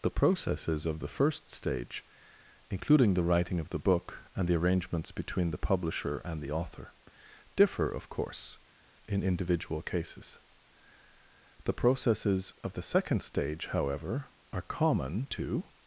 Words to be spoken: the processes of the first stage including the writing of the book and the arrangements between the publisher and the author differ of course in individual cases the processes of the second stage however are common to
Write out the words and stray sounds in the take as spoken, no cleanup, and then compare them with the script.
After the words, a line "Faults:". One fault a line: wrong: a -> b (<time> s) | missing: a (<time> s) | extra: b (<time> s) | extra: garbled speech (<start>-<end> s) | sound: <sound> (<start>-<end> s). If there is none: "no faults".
the processes of the first stage including the writing of the book and the arrangements between the publisher and the author differ of course in individual cases the processes of the second stage however are common to
Faults:
no faults